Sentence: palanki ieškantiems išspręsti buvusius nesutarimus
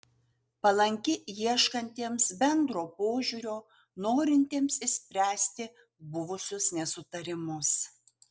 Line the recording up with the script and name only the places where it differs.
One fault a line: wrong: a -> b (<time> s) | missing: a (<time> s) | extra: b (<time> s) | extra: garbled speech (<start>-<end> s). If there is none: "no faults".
extra: bendro požiūrio norintiems (2.4 s)